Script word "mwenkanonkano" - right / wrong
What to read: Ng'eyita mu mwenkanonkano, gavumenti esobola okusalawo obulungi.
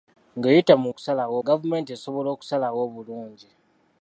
wrong